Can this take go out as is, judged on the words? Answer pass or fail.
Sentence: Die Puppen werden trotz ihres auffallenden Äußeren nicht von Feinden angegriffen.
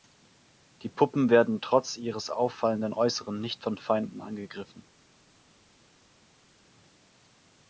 pass